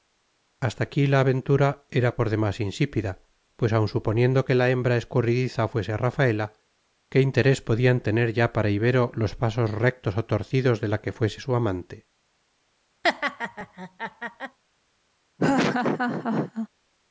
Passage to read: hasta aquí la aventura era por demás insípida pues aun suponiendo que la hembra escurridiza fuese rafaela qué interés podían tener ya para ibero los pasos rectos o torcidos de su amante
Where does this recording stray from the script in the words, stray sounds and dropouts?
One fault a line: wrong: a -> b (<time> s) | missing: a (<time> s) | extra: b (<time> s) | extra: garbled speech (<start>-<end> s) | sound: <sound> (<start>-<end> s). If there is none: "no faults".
extra: la que fuese (10.9 s)
sound: laugh (13.0-14.6 s)
sound: laugh (15.4-16.7 s)